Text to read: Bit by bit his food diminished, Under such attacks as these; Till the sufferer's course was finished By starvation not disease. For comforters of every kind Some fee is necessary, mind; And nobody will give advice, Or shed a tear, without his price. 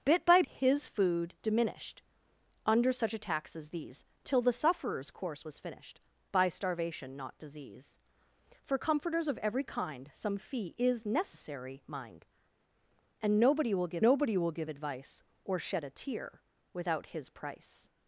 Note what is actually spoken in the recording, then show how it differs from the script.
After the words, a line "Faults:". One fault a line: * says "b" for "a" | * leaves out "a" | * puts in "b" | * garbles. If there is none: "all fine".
Bit by his food diminished, Under such attacks as these; Till the sufferer's course was finished By starvation not disease. For comforters of every kind Some fee is necessary, mind; And nobody will give nobody will give advice, Or shed a tear, without his price.
Faults:
* leaves out "bit"
* puts in "nobody will give"